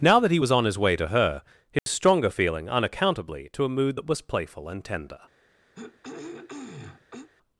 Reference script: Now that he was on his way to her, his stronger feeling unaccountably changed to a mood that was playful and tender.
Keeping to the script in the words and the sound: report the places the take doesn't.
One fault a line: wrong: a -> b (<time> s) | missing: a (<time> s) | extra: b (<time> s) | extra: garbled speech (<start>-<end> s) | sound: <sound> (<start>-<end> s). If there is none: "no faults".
sound: dropout (1.8-1.9 s)
missing: changed (3.5 s)
sound: throat clearing (5.7-7.3 s)